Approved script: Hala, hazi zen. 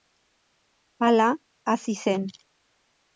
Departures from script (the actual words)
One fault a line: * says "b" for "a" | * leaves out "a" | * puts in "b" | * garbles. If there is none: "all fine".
all fine